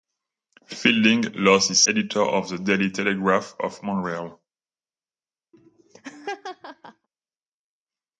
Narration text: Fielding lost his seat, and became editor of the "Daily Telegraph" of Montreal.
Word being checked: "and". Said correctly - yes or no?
no